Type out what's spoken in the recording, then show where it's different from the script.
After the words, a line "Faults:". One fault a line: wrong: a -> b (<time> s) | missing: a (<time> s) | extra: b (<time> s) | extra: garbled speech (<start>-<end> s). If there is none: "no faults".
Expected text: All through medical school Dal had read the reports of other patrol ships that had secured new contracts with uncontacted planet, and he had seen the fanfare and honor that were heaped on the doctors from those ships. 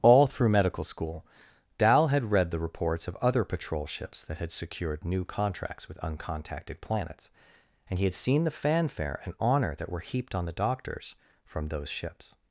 All through medical school Dal had read the reports of other patrol ships that had secured new contracts with uncontacted planets, and he had seen the fanfare and honor that were heaped on the doctors from those ships.
Faults:
wrong: planet -> planets (6.8 s)